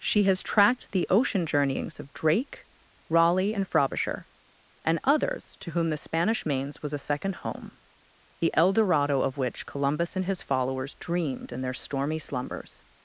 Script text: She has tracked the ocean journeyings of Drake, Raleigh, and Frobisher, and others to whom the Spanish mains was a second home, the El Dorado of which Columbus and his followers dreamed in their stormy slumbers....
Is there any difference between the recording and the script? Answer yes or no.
no